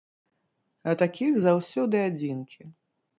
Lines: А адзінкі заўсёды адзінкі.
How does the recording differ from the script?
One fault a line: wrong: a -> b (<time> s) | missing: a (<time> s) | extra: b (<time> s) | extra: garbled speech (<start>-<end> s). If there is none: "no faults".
wrong: адзінкі -> такіх (1.0 s)